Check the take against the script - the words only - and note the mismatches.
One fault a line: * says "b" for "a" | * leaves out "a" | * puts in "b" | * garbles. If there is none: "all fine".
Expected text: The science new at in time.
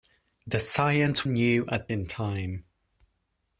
all fine